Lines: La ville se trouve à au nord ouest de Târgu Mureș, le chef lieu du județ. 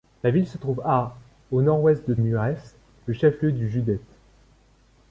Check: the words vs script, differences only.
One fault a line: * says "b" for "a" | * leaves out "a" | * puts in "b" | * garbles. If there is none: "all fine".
* leaves out "Târgu"